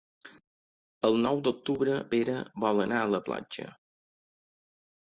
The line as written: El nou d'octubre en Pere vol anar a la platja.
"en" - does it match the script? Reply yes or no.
no